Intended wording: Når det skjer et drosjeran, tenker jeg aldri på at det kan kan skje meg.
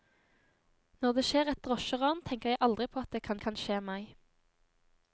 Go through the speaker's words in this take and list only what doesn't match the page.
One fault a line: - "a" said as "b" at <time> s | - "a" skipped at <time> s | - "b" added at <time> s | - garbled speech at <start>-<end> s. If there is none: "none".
none